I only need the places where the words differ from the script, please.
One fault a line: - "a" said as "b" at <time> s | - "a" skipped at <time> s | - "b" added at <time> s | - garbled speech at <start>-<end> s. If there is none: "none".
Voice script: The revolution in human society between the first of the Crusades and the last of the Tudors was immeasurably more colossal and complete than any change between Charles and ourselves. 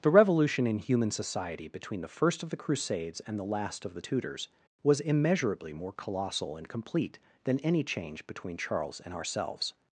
none